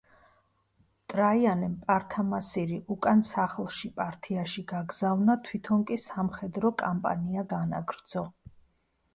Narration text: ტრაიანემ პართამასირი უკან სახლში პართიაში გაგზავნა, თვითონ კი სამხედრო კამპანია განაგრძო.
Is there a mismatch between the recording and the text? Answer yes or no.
no